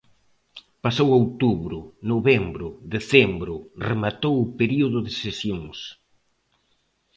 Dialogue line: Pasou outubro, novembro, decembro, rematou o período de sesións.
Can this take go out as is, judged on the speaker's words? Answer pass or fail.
pass